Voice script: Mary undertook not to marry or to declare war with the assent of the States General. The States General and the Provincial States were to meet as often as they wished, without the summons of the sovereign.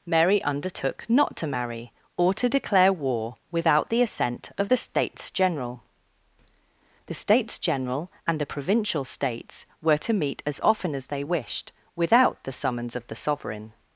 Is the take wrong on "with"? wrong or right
wrong